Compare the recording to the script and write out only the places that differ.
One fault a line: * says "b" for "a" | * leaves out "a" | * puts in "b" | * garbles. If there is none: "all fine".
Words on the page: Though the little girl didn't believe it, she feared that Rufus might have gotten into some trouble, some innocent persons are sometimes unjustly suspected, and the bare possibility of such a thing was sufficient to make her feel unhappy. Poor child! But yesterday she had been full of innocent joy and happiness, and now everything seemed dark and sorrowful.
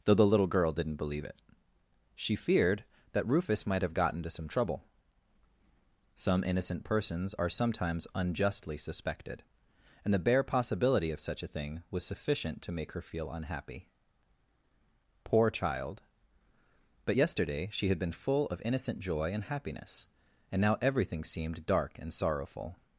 all fine